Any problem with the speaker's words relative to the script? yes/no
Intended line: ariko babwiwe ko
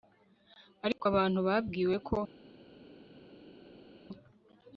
yes